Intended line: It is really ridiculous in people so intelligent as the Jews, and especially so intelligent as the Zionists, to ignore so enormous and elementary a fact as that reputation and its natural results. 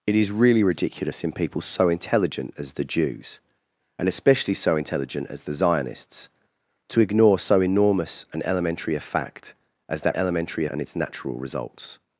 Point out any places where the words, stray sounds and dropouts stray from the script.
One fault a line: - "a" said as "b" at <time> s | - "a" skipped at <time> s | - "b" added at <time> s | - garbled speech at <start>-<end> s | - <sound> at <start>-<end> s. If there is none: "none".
- "reputation" said as "elementary" at 10.1 s